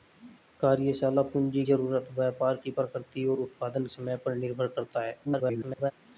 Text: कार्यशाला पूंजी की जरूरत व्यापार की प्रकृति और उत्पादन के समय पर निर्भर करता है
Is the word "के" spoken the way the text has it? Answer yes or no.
no